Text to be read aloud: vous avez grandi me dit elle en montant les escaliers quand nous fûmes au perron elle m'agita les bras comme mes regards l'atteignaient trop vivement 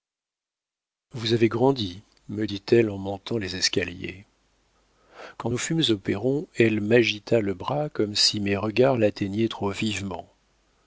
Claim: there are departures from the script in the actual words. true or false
true